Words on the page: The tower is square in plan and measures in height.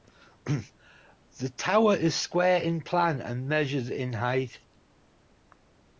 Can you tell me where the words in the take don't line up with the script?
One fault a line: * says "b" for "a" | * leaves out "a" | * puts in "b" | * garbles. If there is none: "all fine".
all fine